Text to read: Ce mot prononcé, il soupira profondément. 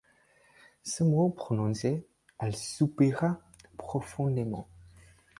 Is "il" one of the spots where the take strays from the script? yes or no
yes